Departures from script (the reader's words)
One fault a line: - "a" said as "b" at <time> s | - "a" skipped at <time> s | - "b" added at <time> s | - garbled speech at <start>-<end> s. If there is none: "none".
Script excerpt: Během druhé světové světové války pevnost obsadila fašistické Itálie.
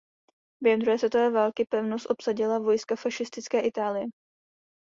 - "světové" skipped at 1.3 s
- "vojska" added at 2.6 s